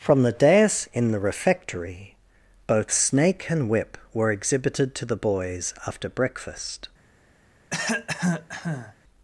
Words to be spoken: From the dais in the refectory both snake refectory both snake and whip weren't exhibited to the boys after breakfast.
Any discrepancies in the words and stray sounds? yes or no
yes